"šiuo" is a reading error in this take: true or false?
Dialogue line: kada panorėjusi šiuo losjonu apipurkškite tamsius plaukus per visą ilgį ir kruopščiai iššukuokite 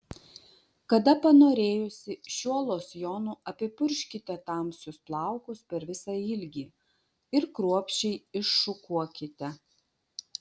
false